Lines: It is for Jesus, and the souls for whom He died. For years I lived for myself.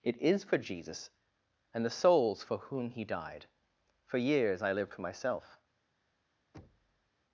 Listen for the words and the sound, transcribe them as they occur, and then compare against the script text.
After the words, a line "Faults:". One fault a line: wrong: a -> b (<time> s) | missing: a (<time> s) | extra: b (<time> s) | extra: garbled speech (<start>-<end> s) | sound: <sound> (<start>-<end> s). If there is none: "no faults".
It is for Jesus, and the souls for whom He died. For years I lived for myself.
Faults:
sound: thud (6.5-7.1 s)